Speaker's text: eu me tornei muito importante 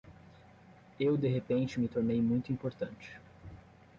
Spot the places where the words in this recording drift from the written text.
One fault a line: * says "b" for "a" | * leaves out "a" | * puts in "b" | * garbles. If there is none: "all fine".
* puts in "de repente"